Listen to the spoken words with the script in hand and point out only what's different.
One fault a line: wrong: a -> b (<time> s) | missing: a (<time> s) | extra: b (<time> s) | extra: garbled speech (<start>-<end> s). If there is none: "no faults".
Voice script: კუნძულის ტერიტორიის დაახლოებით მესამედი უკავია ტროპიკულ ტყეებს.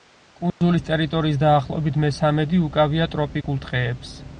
no faults